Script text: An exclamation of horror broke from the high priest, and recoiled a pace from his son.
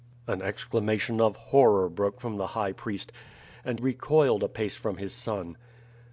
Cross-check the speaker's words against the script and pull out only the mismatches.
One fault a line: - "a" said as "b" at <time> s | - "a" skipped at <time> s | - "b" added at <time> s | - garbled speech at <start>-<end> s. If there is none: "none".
none